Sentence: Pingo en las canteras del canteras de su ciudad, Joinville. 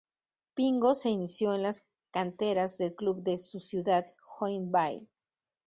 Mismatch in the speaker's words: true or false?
true